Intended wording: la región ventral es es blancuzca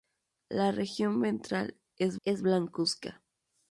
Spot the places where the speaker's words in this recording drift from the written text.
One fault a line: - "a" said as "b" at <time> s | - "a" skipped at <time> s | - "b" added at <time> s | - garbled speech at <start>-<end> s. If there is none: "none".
none